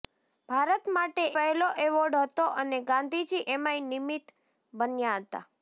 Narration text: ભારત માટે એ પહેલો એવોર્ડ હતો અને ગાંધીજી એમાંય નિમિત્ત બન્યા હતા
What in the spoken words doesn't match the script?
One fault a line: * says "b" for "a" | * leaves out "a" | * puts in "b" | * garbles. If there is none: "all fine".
* leaves out "એ"